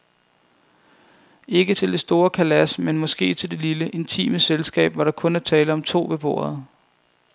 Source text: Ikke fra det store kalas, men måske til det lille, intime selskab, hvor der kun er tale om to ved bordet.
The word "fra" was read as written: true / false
false